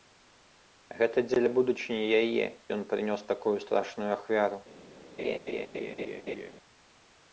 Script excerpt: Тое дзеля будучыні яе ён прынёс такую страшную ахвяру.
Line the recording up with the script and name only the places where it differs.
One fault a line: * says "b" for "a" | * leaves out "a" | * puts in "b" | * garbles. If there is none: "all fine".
* says "Гэта" for "Тое"